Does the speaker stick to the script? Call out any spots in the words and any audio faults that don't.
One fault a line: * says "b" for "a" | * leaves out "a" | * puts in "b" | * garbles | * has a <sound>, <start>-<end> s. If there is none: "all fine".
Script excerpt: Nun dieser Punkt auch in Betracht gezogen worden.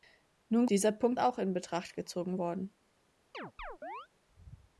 * has a chirp, 3.3-4.1 s